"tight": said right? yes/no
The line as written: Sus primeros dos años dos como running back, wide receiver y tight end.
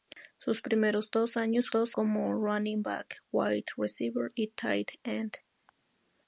yes